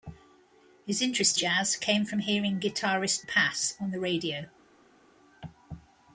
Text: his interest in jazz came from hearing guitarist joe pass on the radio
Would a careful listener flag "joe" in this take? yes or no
yes